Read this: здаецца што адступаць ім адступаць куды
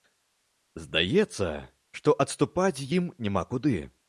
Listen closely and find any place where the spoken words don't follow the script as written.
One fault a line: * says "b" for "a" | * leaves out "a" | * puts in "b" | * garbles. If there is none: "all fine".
* says "няма" for "адступаць"